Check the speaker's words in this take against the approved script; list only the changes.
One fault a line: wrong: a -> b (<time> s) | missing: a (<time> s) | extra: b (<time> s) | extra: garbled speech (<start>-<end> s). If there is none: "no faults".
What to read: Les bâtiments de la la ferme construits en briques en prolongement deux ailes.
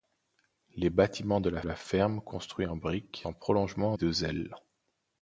no faults